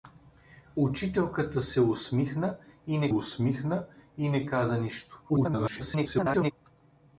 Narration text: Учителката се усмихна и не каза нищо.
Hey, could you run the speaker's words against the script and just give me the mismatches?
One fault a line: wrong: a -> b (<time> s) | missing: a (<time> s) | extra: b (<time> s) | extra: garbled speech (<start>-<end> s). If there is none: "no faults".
extra: усмихна и не (3.1 s)
extra: garbled speech (5.3-6.5 s)